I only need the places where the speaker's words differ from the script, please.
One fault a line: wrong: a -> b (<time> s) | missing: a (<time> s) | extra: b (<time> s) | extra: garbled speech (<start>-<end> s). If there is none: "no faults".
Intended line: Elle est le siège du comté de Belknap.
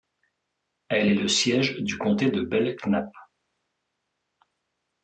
no faults